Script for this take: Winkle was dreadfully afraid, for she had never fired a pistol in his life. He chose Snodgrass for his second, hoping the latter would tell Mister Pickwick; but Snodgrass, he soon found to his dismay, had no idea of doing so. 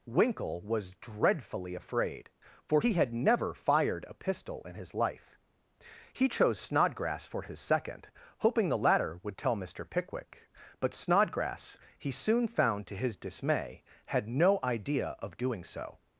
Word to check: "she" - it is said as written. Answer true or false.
false